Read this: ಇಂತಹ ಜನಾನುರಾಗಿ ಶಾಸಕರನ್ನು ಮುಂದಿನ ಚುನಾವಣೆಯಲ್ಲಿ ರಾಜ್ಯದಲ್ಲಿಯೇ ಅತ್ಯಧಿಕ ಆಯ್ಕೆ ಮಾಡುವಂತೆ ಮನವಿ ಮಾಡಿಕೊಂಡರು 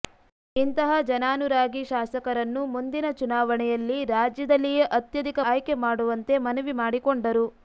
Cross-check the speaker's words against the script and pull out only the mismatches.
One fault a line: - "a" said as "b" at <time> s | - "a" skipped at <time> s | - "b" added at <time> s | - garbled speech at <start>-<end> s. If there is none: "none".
none